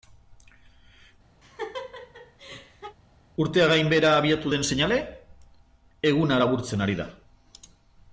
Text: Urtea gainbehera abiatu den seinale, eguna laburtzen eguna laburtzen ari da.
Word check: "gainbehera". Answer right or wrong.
right